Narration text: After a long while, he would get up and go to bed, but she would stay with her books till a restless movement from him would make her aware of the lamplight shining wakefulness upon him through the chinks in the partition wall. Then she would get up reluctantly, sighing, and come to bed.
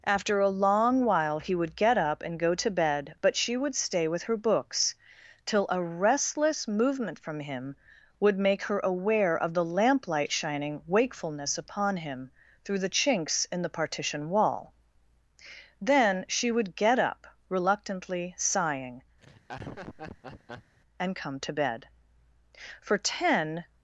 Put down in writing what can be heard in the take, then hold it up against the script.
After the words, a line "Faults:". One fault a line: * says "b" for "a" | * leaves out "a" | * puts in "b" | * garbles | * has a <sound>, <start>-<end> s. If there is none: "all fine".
After a long while, he would get up and go to bed, but she would stay with her books till a restless movement from him would make her aware of the lamplight shining wakefulness upon him through the chinks in the partition wall. Then she would get up reluctantly, sighing, and come to bed. For ten
Faults:
* has a laugh, 19.2-20.8 s
* puts in "For ten"